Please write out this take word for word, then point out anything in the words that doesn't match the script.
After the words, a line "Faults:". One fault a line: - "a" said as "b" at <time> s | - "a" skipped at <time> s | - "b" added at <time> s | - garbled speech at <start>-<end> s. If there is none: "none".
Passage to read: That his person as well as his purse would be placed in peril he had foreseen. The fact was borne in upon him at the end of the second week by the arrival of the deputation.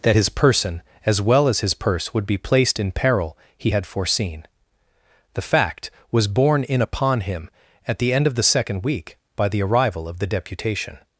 That his person as well as his purse would be placed in peril he had foreseen. The fact was borne in upon him at the end of the second week by the arrival of the deputation.
Faults:
none